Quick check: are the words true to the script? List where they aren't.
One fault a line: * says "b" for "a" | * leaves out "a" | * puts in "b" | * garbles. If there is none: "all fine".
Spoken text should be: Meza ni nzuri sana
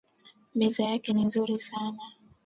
* puts in "yake"